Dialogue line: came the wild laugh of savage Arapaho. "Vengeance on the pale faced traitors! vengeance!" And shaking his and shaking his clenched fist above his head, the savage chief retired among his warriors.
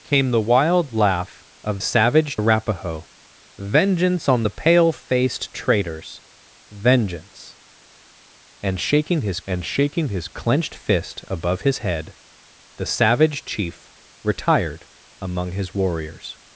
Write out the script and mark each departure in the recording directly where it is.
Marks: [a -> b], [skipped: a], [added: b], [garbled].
came the wild laugh of savage Arapaho. "Vengeance on the pale faced traitors! vengeance!" And shaking his and shaking his clenched fist above his head, the savage chief retired among his warriors.